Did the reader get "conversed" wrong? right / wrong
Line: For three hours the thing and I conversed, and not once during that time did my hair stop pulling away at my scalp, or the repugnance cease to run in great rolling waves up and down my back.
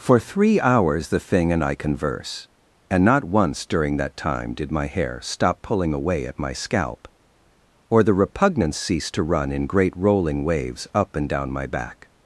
wrong